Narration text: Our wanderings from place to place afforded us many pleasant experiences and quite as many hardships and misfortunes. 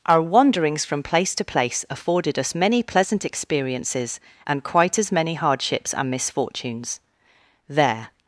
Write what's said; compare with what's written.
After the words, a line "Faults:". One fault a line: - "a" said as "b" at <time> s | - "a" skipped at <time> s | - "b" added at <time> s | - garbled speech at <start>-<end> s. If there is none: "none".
Our wanderings from place to place afforded us many pleasant experiences and quite as many hardships and misfortunes. There
Faults:
- "There" added at 7.7 s